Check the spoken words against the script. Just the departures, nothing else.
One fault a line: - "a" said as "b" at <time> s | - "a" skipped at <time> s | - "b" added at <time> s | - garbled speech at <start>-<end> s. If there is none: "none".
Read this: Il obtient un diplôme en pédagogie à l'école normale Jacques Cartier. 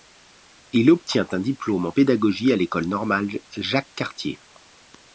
none